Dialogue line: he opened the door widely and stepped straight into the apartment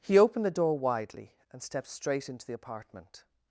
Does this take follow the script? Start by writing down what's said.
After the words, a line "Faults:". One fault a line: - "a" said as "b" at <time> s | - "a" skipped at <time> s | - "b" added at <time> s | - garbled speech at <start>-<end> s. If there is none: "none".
he opened the door widely and stepped straight into the apartment
Faults:
none